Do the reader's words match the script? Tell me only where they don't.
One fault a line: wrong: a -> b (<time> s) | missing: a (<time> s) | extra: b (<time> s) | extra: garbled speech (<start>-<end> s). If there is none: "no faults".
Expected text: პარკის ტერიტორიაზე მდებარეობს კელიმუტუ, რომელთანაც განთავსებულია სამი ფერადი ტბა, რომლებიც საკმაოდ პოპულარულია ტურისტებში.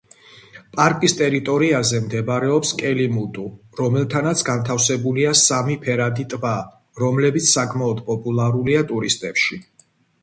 no faults